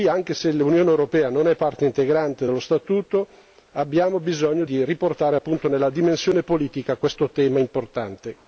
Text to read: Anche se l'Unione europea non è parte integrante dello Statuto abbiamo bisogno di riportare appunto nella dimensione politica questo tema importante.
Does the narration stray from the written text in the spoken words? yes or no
no